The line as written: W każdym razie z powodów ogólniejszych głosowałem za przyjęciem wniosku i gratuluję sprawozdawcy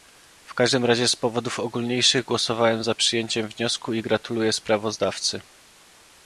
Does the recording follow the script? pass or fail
pass